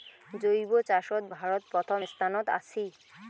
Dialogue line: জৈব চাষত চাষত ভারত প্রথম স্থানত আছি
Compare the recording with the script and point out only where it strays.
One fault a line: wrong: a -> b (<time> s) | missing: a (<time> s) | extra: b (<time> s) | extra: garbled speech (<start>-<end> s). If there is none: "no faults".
missing: চাষত (1.2 s)